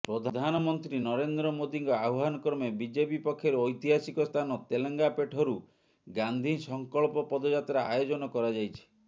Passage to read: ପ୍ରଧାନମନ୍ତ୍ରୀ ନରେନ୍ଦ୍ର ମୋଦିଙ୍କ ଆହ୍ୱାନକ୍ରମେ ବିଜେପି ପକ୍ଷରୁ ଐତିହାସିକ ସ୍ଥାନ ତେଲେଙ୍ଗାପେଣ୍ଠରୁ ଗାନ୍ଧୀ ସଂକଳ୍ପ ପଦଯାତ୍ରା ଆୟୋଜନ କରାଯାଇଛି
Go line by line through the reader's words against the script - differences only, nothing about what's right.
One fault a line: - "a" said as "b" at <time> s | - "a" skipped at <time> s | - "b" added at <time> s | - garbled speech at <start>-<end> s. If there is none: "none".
none